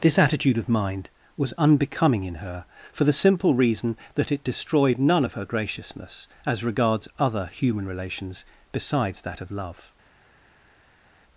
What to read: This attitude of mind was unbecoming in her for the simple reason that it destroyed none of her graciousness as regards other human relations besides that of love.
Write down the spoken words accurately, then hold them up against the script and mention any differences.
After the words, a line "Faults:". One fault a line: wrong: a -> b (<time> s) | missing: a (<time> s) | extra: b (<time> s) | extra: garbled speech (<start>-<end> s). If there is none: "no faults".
This attitude of mind was unbecoming in her for the simple reason that it destroyed none of her graciousness as regards other human relations besides that of love.
Faults:
no faults